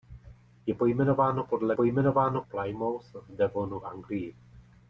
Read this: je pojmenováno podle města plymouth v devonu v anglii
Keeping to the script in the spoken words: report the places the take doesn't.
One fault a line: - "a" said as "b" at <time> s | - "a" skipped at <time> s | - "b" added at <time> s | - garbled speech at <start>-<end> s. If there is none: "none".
- "města" said as "pojmenováno" at 1.7 s
- "v" skipped at 3.8 s